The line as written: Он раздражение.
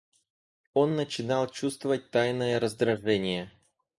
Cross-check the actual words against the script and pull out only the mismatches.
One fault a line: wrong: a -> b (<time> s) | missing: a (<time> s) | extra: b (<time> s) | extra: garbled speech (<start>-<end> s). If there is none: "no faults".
extra: начинал чувствовать тайное (0.9 s)